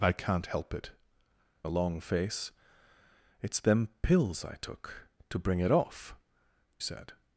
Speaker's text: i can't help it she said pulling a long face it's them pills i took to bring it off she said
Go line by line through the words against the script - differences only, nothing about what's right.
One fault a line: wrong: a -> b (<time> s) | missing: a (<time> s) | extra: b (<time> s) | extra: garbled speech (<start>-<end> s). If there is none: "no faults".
missing: she said pulling (0.9 s)
missing: she (6.2 s)